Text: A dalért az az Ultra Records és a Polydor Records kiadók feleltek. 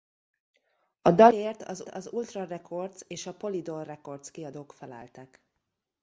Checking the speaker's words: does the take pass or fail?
pass